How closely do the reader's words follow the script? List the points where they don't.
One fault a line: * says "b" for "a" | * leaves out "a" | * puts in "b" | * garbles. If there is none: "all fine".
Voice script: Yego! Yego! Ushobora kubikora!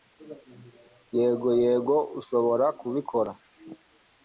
all fine